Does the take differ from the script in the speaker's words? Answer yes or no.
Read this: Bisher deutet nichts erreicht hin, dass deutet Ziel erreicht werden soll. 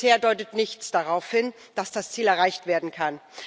yes